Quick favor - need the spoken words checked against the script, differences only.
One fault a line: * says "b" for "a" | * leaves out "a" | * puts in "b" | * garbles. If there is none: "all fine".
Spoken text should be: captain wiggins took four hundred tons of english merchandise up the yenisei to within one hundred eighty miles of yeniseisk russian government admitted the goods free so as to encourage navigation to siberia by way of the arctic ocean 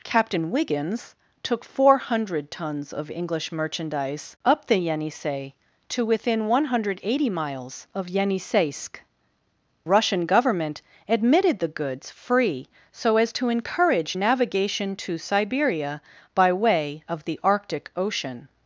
all fine